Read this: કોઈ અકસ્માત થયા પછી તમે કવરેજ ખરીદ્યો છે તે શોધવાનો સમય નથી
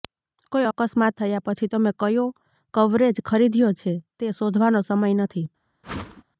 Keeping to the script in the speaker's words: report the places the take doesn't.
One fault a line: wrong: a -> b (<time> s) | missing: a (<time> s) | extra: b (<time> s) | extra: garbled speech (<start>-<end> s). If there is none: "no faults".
extra: કયો (2.0 s)